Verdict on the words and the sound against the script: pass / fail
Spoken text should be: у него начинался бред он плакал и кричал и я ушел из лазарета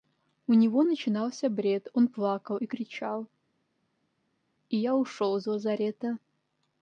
pass